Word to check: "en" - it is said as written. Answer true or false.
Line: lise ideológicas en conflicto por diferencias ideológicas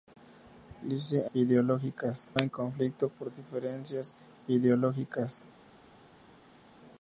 true